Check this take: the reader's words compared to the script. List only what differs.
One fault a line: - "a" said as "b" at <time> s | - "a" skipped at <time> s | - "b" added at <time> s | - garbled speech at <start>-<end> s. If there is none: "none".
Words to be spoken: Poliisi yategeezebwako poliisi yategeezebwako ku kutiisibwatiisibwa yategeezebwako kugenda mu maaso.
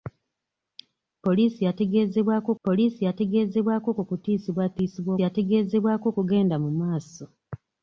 none